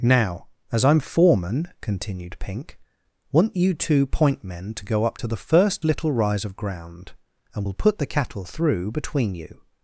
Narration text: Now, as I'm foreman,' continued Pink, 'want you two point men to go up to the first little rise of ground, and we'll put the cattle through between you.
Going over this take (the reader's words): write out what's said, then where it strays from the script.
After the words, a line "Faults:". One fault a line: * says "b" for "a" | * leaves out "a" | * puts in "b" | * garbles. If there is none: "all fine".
Now, as I'm foreman,' continued Pink, 'want you two point men to go up to the first little rise of ground, and we'll put the cattle through between you.
Faults:
all fine